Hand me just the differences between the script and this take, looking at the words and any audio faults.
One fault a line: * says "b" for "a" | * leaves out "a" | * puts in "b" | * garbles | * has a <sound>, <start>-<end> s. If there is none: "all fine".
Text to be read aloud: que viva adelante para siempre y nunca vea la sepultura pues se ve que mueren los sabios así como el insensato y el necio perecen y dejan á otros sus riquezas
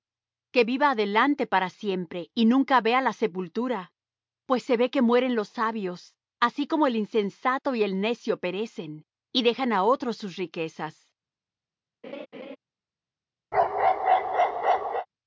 * has a laugh, 12.0-12.6 s
* has a bark, 13.5-15.1 s